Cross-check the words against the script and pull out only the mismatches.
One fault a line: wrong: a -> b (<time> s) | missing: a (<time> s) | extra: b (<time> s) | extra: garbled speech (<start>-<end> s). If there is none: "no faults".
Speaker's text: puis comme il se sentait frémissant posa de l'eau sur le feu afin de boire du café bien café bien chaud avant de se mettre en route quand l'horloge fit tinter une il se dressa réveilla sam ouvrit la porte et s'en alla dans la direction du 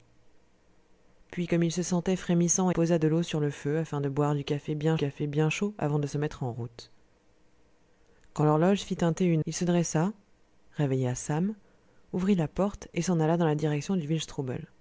no faults